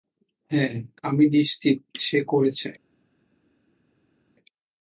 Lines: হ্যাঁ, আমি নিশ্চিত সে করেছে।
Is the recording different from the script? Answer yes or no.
no